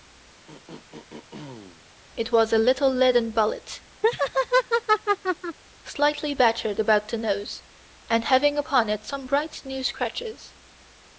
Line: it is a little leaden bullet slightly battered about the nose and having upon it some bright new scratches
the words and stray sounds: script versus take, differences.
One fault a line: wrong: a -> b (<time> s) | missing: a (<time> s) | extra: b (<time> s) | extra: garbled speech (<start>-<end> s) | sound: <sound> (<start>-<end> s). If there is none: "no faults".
sound: throat clearing (0.5-1.8 s)
wrong: is -> was (2.3 s)
sound: laugh (4.0-5.6 s)